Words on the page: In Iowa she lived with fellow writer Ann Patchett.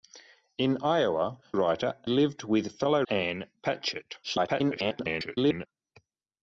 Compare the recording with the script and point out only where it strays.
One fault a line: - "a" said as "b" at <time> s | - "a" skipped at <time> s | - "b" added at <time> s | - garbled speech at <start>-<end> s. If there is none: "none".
- "she" said as "writer" at 1.5 s
- "writer" skipped at 3.0 s
- garbled speech at 4.2-5.7 s